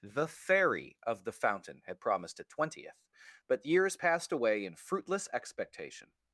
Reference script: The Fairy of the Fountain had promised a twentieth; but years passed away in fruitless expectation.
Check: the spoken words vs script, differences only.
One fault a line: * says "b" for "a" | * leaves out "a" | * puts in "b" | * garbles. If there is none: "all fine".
all fine